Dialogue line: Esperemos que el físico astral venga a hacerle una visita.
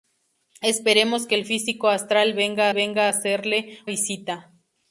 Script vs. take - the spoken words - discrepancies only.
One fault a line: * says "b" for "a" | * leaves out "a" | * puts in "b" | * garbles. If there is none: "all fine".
* puts in "venga"
* leaves out "una"